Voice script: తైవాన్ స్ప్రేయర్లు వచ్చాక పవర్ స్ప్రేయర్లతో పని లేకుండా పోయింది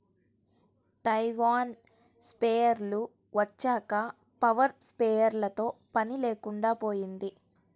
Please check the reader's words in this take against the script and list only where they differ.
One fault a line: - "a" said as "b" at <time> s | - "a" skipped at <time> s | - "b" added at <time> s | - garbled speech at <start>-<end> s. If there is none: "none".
none